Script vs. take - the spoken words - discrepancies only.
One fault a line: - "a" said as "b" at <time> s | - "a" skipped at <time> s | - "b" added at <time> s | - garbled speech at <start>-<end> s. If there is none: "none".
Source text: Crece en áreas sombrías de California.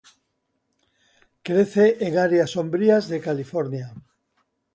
none